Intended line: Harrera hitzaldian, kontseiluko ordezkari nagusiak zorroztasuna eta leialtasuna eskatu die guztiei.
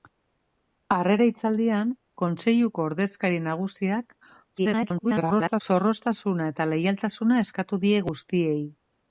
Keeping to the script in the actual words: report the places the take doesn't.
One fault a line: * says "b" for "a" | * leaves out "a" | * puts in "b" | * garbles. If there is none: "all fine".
* garbles